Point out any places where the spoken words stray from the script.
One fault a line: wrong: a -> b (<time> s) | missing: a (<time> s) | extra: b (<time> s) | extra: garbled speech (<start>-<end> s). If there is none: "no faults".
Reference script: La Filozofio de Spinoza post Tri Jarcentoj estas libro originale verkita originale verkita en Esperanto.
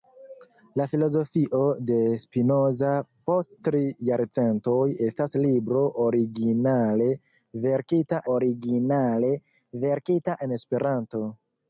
no faults